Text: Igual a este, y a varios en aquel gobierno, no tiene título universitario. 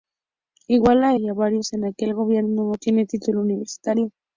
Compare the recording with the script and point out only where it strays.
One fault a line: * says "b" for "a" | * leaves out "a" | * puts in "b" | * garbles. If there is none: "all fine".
* leaves out "este"